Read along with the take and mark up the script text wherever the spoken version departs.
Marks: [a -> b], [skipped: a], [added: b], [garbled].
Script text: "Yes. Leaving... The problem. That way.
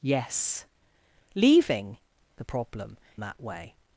"Yes. Leaving... The problem. That way.